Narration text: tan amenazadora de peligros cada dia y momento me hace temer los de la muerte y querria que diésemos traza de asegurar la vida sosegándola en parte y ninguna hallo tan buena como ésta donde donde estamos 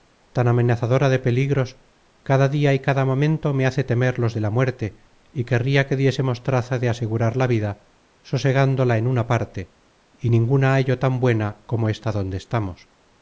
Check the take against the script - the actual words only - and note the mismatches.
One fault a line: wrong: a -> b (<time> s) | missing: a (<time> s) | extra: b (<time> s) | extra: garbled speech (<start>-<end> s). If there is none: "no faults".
extra: cada (2.8 s)
extra: una (9.1 s)
missing: donde (12.4 s)